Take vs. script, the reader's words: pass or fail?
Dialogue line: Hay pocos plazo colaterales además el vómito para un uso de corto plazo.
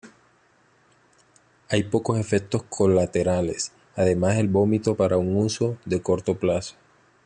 fail